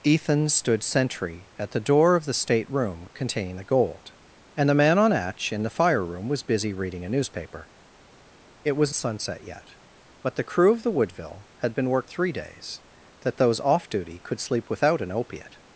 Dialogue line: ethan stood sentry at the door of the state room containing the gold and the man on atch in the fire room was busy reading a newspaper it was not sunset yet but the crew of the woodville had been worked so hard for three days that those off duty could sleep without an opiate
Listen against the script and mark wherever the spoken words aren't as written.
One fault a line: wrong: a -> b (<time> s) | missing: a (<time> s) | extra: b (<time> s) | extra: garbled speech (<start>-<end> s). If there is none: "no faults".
missing: not (8.9 s)
missing: so hard for (12.1 s)